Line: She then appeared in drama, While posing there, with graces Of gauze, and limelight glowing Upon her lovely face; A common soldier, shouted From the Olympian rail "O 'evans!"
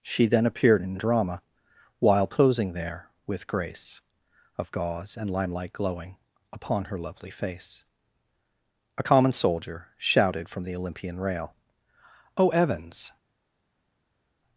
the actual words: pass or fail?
fail